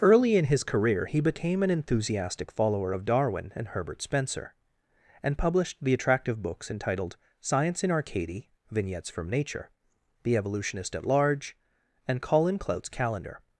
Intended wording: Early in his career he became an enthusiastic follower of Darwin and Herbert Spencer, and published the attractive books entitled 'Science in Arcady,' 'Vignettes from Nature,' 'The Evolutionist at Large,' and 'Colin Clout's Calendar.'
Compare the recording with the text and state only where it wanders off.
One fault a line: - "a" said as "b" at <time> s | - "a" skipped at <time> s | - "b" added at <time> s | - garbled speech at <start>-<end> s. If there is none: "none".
none